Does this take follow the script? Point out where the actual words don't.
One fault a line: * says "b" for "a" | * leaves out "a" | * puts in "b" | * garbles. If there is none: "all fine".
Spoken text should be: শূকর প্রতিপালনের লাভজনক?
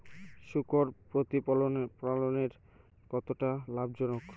* puts in "কতটা"